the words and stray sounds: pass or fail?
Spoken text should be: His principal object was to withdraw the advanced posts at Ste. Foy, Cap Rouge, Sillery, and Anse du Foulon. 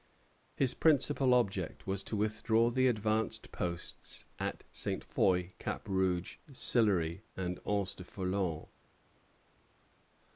pass